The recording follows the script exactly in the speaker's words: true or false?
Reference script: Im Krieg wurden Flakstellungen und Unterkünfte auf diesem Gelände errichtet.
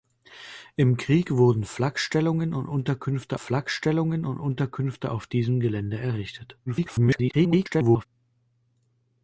false